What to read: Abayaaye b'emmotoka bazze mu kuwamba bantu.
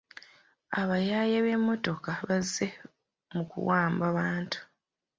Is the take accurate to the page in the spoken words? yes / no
yes